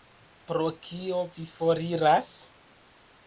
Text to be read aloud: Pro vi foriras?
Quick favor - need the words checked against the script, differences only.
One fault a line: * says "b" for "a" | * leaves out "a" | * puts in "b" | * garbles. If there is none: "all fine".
* puts in "kio"